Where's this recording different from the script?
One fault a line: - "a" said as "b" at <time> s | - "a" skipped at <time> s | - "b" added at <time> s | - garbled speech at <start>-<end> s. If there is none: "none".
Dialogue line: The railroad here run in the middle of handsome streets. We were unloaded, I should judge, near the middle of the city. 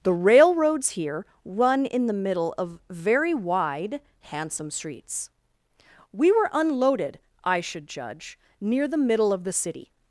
- "railroad" said as "railroads" at 0.1 s
- "very wide" added at 2.9 s